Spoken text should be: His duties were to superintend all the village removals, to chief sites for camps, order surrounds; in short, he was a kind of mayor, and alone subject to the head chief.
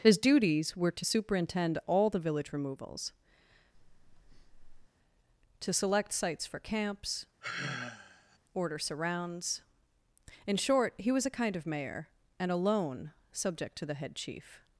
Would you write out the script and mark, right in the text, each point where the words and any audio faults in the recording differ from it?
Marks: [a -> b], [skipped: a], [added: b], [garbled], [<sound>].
His duties were to superintend all the village removals, [breath] to [chief -> select] sites for camps, [sigh] order surrounds; in short, he was a kind of mayor, and alone subject to the head chief.